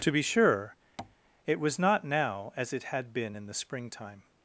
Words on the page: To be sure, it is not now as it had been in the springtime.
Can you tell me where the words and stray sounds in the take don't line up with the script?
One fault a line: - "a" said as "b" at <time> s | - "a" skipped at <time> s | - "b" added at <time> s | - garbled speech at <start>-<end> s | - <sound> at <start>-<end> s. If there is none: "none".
- tap at 1.0-1.2 s
- "is" said as "was" at 1.6 s